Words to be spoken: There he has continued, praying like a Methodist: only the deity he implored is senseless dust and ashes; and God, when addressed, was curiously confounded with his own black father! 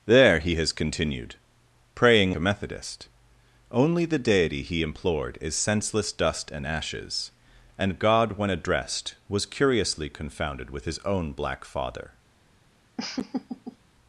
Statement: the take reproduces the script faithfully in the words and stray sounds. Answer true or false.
false